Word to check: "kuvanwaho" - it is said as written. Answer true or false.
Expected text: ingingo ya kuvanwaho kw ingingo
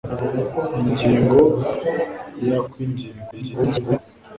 false